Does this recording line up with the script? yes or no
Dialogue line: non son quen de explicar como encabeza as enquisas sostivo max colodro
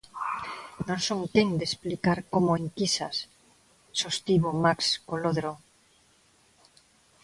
no